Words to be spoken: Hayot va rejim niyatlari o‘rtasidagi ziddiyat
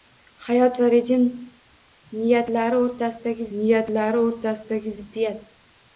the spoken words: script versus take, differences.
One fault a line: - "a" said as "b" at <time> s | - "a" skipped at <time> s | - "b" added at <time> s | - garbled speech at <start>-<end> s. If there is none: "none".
- "niyatlari o‘rtasidagi" added at 3.6 s